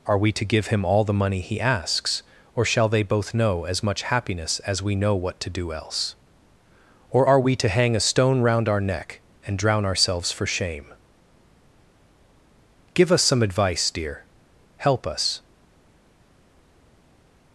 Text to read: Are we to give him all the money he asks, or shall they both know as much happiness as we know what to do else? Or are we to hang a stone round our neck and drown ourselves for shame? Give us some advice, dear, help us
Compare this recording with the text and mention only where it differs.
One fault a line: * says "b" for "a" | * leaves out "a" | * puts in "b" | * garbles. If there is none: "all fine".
all fine